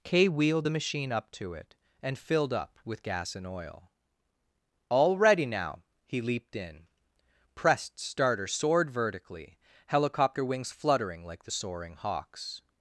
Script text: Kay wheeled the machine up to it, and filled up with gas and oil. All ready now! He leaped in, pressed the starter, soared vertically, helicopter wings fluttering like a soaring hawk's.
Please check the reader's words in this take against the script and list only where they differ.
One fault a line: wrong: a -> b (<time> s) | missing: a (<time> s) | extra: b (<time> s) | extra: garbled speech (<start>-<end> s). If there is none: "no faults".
missing: the (8.0 s)
wrong: a -> the (11.4 s)